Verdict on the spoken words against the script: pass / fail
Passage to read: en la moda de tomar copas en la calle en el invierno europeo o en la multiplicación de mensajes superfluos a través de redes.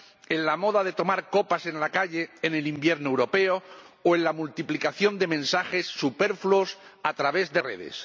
pass